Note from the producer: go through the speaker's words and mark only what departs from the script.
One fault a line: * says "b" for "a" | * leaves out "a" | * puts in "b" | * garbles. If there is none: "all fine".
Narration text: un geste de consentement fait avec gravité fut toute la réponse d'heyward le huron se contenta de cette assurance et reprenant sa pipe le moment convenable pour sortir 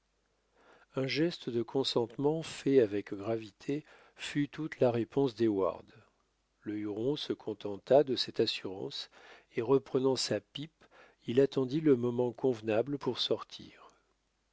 * puts in "il attendit"